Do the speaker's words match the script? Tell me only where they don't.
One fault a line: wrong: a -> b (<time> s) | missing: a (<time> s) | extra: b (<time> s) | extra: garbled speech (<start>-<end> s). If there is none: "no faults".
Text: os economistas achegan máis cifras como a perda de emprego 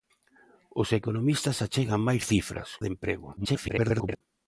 missing: como a perda (2.7 s)
extra: garbled speech (3.4-4.2 s)